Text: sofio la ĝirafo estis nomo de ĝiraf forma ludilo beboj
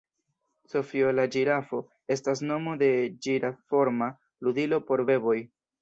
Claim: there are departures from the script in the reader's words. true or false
true